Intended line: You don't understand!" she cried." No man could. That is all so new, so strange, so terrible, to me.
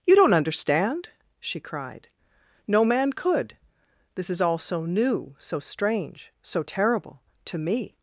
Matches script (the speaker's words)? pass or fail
fail